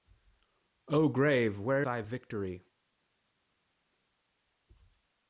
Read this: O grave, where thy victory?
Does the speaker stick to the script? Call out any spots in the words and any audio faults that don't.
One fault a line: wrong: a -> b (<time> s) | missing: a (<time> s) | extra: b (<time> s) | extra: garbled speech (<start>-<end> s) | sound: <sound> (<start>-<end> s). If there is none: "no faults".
no faults